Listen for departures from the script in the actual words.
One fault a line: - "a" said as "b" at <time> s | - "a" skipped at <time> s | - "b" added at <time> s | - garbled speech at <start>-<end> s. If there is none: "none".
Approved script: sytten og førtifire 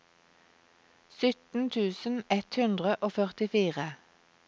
- "tusen ett hundre" added at 1.8 s